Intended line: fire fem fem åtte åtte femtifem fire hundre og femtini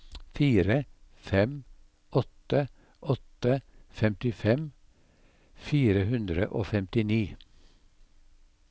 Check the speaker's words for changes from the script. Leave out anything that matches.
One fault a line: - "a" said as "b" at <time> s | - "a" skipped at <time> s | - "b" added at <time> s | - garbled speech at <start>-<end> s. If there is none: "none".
- "fem" skipped at 1.5 s